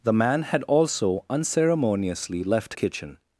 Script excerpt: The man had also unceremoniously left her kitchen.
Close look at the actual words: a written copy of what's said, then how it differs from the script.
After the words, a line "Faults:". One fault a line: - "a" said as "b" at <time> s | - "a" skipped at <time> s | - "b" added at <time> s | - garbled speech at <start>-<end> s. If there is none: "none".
The man had also unceremoniously left kitchen.
Faults:
- "her" skipped at 2.8 s